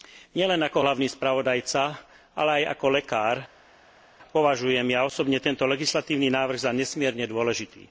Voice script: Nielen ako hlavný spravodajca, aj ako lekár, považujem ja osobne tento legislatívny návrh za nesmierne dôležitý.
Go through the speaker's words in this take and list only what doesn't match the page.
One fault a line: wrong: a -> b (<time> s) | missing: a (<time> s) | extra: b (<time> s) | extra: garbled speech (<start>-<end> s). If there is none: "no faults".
extra: ale (2.3 s)